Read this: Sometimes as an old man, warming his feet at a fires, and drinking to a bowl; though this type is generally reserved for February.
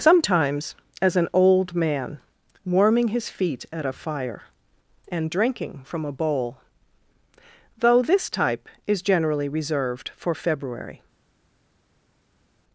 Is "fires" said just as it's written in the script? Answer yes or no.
no